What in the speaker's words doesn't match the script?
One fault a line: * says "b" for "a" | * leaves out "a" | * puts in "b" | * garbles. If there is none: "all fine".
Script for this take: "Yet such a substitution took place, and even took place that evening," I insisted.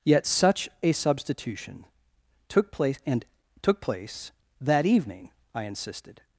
* leaves out "even"